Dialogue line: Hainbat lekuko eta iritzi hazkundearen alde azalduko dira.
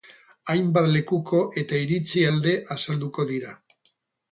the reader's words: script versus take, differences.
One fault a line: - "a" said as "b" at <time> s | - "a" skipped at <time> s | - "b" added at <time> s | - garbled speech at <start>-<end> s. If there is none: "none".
- "hazkundearen" skipped at 2.2 s